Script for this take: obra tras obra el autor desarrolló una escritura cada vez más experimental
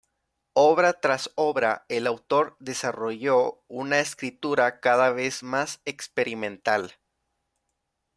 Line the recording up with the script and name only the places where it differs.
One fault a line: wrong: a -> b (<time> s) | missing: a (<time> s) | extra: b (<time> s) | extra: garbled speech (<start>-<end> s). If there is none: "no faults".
no faults